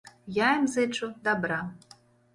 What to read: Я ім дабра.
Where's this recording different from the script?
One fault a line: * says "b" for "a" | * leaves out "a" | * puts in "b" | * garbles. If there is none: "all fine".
* puts in "зычу"